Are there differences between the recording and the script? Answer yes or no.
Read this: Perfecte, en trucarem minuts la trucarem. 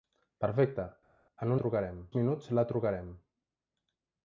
no